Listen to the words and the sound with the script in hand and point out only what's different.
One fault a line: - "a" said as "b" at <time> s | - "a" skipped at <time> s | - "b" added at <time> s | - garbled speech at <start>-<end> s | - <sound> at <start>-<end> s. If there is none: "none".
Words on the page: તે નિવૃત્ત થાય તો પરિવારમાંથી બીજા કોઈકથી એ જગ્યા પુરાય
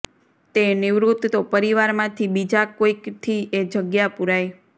- "થાય" skipped at 1.3 s